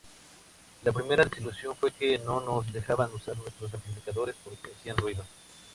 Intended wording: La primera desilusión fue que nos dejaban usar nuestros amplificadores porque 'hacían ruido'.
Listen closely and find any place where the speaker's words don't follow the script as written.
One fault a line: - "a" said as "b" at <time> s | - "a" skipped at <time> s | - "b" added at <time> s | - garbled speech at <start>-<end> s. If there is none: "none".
- "no" added at 2.2 s